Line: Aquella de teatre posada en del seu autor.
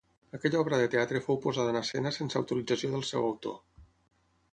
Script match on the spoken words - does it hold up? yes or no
no